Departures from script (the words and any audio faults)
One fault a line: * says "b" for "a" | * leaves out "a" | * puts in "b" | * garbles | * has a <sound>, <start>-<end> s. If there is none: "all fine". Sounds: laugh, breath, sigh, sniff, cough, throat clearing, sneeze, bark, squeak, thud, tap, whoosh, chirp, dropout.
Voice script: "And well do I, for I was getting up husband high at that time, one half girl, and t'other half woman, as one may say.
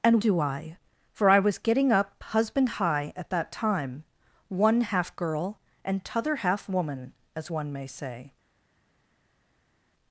* leaves out "well"